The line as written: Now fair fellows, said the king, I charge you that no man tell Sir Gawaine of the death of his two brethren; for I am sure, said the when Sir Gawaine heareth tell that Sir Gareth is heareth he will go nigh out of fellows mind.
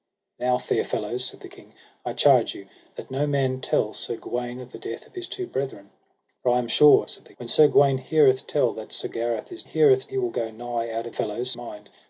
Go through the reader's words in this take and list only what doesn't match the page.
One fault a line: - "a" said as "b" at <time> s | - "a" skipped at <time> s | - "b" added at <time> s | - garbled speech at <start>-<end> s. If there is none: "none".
none